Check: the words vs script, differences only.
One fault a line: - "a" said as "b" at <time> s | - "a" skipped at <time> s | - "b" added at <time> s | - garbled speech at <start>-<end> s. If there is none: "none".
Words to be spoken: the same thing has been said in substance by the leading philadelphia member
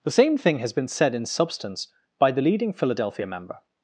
none